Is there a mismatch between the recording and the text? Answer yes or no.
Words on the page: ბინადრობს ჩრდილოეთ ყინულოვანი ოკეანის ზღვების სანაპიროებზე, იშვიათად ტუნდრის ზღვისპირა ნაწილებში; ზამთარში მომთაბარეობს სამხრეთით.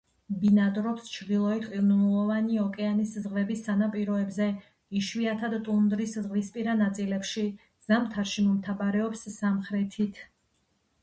no